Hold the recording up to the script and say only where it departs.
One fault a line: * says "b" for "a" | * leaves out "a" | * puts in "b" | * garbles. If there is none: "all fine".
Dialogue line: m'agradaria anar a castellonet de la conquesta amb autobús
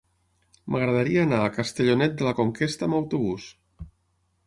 all fine